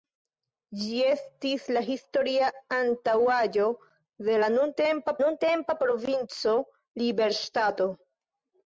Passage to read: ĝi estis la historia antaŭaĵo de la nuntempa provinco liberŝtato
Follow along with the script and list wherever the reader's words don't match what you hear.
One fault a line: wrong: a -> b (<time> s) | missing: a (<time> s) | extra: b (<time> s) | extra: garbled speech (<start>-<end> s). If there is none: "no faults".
extra: nuntempa (5.2 s)